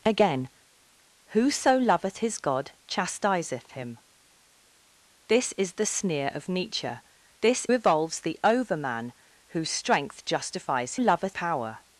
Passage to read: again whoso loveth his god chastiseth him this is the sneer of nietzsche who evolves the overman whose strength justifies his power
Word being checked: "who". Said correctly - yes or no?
no